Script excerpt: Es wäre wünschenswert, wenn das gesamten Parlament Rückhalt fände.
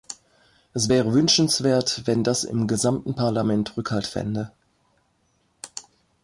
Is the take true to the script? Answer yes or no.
no